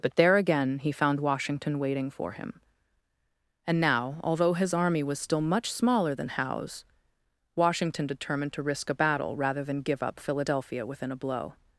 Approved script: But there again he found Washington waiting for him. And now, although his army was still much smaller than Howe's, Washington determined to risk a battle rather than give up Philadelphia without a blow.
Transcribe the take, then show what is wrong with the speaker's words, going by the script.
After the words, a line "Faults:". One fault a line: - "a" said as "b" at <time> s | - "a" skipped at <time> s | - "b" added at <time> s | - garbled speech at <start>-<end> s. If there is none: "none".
But there again he found Washington waiting for him. And now, although his army was still much smaller than Howe's, Washington determined to risk a battle rather than give up Philadelphia within a blow.
Faults:
- "without" said as "within" at 10.9 s